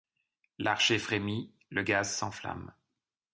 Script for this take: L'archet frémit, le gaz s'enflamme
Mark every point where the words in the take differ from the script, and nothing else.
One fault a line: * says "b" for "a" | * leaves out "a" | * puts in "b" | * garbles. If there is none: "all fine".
all fine